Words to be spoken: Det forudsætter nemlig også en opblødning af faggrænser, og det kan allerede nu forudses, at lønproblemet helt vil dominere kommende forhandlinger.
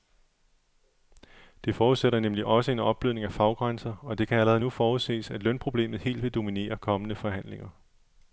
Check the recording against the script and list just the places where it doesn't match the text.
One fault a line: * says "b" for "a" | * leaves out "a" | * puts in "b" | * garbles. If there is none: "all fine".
all fine